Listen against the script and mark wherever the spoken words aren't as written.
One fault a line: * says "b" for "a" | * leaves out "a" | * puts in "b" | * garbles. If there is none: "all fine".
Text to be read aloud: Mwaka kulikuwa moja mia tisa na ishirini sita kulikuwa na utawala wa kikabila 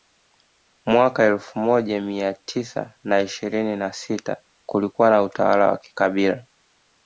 * says "elfu" for "kulikuwa"
* puts in "na"